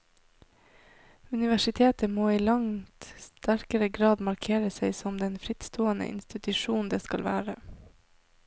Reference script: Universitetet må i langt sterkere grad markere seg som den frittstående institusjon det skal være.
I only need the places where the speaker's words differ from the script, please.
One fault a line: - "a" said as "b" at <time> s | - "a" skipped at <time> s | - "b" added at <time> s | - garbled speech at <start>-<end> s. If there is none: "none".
none